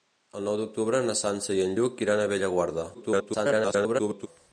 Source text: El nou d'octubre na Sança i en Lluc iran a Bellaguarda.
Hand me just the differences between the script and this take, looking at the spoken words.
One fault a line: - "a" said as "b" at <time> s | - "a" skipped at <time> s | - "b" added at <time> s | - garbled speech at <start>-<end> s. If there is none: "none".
- garbled speech at 2.9-4.3 s